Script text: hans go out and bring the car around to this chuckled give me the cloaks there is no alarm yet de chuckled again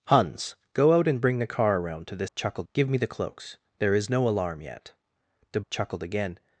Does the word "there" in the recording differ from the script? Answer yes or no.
no